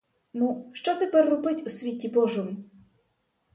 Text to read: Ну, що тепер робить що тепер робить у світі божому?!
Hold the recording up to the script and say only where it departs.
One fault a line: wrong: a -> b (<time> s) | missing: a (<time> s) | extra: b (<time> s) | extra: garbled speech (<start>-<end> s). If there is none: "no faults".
missing: що тепер робить (1.7 s)